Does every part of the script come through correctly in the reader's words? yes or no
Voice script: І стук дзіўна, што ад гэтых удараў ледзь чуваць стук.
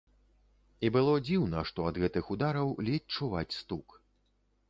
no